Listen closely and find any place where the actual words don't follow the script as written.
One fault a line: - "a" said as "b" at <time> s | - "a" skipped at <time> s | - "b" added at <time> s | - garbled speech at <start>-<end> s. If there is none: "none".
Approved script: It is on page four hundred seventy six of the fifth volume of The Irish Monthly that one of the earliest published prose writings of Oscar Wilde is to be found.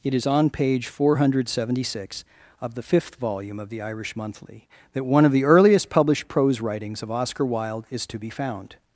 none